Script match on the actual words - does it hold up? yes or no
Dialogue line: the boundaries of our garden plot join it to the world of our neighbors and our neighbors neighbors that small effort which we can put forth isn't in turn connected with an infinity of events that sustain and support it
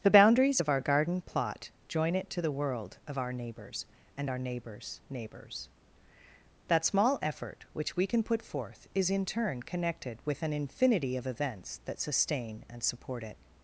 no